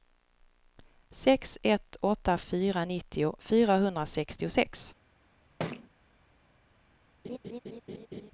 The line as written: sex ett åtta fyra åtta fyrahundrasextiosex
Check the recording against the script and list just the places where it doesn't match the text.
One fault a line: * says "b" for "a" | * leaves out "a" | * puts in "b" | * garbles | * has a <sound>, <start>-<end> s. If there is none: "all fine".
* says "nittio" for "åtta"
* has a thud, 5.6-5.9 s
* has a laugh, 7.2-8.3 s